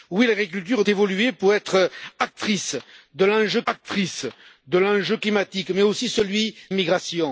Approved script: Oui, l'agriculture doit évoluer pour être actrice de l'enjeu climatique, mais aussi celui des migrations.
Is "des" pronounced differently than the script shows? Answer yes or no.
yes